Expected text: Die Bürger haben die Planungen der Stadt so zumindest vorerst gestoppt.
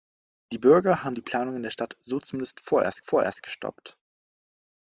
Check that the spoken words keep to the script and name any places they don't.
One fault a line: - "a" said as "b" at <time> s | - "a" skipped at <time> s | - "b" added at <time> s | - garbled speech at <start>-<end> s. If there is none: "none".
- "vorerst" added at 3.0 s